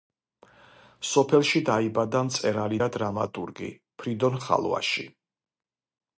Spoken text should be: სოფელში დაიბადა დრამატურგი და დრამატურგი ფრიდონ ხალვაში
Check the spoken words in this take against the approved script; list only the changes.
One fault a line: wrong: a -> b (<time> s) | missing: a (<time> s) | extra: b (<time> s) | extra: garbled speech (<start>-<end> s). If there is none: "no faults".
wrong: დრამატურგი -> მწერალი (2.3 s)